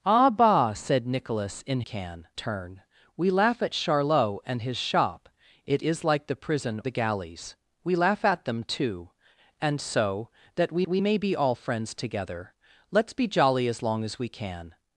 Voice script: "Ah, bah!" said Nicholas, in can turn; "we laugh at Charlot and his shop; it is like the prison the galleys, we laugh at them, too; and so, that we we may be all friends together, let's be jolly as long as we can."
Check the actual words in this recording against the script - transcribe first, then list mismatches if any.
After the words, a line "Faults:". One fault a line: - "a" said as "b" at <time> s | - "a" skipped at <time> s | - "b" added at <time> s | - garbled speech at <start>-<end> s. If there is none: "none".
"Ah, bah!" said Nicholas, in can turn; "we laugh at Charlot and his shop; it is like the prison the galleys, we laugh at them, too; and so, that we we may be all friends together, let's be jolly as long as we can."
Faults:
none